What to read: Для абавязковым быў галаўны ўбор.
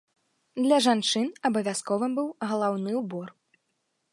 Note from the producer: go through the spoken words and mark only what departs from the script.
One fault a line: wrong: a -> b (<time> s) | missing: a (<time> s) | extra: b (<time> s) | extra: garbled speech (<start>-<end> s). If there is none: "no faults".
extra: жанчын (0.8 s)